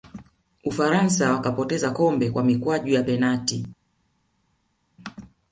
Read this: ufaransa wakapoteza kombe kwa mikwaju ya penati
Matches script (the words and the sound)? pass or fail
pass